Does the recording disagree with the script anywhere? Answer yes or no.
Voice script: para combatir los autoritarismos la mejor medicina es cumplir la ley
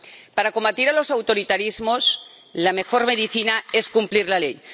no